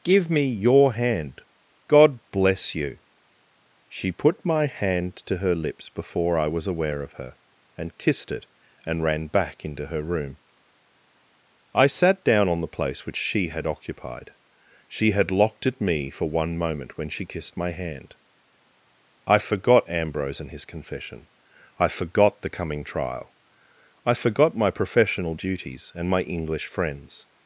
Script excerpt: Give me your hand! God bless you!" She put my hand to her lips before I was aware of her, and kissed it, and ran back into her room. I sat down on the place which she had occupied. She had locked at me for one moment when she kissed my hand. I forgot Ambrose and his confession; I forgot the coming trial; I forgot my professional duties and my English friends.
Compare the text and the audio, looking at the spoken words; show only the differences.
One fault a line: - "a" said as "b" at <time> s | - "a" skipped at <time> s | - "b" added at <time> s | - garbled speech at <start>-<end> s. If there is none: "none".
none